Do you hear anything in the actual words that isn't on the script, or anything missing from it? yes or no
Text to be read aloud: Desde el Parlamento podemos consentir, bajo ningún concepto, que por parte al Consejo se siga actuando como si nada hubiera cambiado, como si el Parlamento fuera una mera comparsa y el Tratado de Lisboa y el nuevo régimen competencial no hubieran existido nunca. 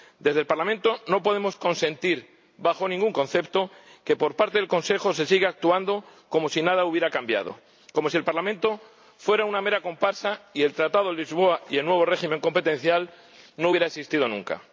yes